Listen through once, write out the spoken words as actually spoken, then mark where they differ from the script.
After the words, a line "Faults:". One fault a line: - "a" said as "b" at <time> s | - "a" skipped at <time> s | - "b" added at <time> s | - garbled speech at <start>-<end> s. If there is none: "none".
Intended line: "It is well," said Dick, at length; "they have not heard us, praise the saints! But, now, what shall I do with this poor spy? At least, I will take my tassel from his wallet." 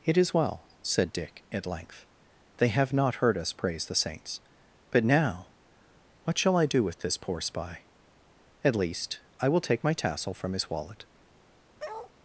"It is well," said Dick, at length; "they have not heard us, praise the saints! But, now, what shall I do with this poor spy? At least, I will take my tassel from his wallet."
Faults:
none